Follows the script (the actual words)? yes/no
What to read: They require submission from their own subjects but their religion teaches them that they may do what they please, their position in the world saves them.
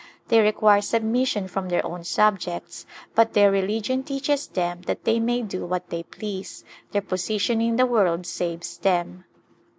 yes